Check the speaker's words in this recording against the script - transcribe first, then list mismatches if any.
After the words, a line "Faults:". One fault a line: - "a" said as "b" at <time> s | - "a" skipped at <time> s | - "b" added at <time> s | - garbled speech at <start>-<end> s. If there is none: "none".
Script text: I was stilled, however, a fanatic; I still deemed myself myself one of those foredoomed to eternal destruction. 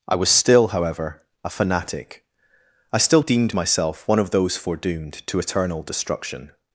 I was still, however, a fanatic; I still deemed myself one of those foredoomed to eternal destruction.
Faults:
- "stilled" said as "still" at 0.3 s
- "myself" skipped at 4.1 s